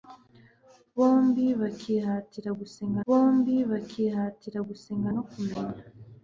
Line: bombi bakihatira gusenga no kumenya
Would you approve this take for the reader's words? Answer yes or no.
no